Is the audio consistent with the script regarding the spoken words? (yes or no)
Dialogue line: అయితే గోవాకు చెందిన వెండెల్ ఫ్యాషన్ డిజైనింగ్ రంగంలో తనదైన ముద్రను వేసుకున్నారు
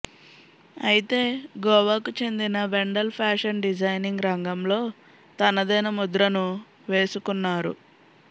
yes